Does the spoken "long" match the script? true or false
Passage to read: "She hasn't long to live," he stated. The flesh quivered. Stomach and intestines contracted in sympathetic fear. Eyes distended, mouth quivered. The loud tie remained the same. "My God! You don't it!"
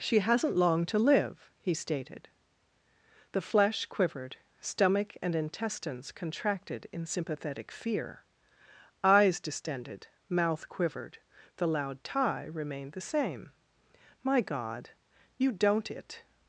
true